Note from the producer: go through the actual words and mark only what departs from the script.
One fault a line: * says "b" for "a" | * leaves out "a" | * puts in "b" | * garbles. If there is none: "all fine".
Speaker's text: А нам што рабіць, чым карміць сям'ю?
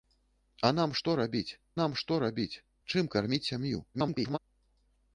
* puts in "нам што рабіць"
* garbles